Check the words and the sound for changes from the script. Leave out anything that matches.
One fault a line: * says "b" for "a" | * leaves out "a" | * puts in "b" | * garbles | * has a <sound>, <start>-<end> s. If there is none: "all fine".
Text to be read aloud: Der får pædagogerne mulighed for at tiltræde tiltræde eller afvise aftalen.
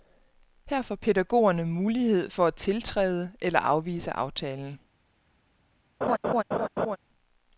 * says "Her" for "Der"
* leaves out "tiltræde"
* has a laugh, 6.0-7.0 s